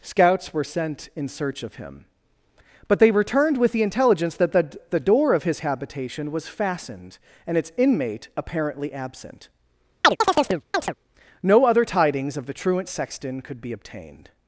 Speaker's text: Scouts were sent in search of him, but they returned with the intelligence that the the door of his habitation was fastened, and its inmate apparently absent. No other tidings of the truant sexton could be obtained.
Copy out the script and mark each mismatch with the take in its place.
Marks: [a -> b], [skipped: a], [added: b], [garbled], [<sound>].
Scouts were sent in search of him, but they returned with the intelligence that the the door of his habitation was fastened, and its inmate apparently absent. [chirp] No other tidings of the truant sexton could be obtained.